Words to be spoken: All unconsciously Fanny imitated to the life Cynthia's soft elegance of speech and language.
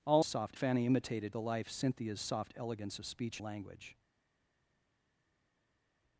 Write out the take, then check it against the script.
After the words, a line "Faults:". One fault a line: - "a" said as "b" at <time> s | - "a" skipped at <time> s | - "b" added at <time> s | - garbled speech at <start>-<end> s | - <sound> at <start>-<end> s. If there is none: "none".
All soft Fanny imitated the life Cynthia's soft elegance of speech language.
Faults:
- "unconsciously" said as "soft" at 0.2 s
- "to" skipped at 1.3 s
- "and" skipped at 3.4 s